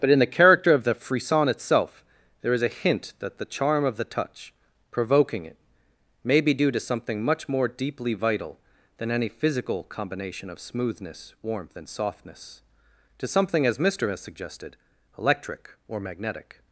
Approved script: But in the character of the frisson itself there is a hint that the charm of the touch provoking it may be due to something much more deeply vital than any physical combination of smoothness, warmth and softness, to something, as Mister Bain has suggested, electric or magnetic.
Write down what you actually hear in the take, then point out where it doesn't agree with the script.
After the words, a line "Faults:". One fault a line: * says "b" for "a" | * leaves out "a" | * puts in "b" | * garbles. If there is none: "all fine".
But in the character of the frisson itself there is a hint that the charm of the touch provoking it may be due to something much more deeply vital than any physical combination of smoothness, warmth and softness, to something, as Mister has suggested, electric or magnetic.
Faults:
* leaves out "Bain"